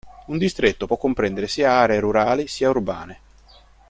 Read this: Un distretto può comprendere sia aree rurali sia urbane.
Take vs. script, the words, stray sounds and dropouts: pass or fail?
pass